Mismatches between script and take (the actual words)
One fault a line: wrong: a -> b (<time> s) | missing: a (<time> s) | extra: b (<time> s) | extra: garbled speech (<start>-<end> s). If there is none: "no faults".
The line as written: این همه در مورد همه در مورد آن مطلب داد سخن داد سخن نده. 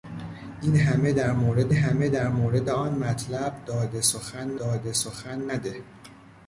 no faults